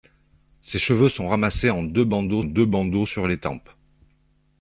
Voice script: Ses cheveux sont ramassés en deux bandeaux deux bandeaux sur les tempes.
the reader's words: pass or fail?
pass